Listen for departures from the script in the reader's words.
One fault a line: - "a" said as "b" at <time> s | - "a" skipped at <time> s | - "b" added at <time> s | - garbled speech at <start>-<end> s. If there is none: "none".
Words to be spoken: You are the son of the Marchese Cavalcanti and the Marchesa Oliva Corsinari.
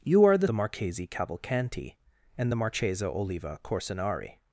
- "son of" skipped at 0.5 s